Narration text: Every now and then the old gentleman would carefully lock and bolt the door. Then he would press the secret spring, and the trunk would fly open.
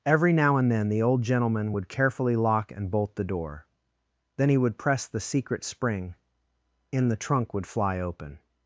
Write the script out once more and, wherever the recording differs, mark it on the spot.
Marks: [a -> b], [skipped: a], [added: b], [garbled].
Every now and then the old gentleman would carefully lock and bolt the door. Then he would press the secret spring, [and -> in] the trunk would fly open.